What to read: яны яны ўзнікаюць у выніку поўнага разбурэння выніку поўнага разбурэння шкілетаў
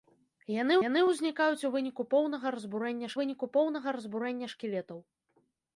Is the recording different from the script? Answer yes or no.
no